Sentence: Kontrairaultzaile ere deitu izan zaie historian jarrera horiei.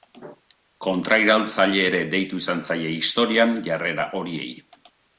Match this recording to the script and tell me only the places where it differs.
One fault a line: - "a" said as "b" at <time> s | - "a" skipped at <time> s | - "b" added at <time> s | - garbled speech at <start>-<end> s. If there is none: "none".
none